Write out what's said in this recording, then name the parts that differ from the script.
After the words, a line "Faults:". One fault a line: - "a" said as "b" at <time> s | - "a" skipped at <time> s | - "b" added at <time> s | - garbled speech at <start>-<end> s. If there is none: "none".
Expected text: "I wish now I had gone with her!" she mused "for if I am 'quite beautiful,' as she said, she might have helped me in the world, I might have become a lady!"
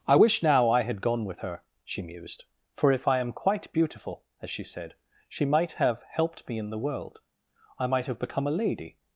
"I wish now I had gone with her!" she mused "for if I am 'quite beautiful,' as she said, she might have helped me in the world, I might have become a lady!"
Faults:
none